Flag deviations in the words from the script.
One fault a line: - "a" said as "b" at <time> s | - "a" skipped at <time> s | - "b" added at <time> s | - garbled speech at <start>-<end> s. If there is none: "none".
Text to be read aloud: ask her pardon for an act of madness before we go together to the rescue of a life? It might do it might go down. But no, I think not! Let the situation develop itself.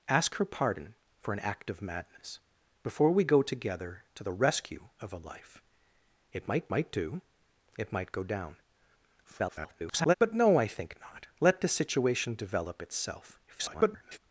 - "might" added at 6.7 s
- garbled speech at 9.2-10.1 s
- garbled speech at 13.5-14.2 s